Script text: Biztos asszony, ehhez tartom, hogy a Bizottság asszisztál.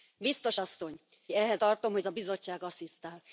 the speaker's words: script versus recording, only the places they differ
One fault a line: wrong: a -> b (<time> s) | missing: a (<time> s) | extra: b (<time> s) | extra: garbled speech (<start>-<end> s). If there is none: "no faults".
no faults